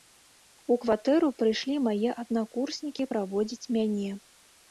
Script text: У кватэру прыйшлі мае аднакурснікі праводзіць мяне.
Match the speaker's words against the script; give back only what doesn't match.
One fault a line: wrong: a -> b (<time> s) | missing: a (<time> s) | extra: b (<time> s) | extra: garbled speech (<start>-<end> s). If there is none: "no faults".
no faults